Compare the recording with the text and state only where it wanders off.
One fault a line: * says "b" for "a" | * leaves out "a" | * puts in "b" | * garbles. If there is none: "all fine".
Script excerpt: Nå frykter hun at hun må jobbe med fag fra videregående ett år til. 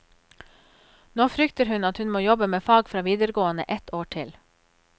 all fine